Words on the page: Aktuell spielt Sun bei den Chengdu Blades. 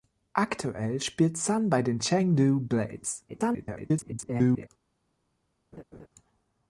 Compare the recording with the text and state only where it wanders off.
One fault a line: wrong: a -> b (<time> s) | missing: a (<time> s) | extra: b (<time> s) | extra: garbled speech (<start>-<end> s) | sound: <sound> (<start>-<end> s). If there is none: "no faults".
extra: garbled speech (3.3-4.7 s)
sound: laugh (5.7-6.1 s)